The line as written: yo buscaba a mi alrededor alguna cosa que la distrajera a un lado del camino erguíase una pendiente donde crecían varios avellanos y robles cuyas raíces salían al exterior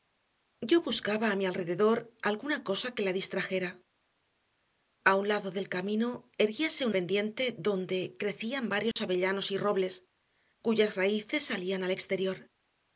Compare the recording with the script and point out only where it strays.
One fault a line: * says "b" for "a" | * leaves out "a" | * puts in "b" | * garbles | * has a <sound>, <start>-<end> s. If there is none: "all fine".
* leaves out "una"
* has a dropout, 8.9-9.0 s